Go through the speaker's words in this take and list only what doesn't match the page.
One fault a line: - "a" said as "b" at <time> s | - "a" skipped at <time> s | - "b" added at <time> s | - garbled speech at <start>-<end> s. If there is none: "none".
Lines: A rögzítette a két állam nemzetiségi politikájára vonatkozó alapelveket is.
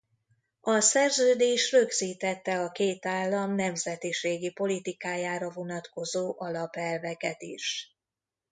- "szerződés" added at 0.8 s